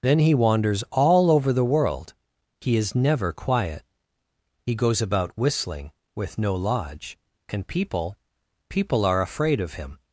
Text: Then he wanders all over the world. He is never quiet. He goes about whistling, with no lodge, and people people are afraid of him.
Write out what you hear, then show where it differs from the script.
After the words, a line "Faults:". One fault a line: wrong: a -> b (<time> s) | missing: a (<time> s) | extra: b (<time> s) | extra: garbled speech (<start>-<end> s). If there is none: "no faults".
Then he wanders all over the world. He is never quiet. He goes about whistling, with no lodge, and people people are afraid of him.
Faults:
no faults